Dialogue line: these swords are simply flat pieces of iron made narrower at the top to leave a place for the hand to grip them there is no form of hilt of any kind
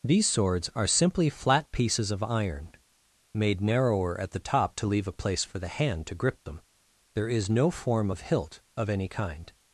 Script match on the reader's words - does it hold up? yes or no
yes